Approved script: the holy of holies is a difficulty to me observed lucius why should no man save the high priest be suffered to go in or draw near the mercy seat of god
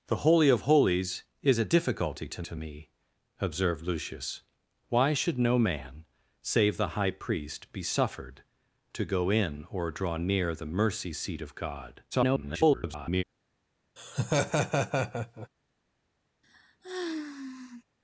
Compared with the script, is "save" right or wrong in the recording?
right